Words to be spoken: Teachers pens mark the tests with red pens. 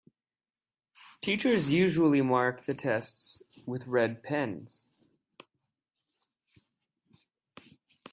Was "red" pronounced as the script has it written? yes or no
yes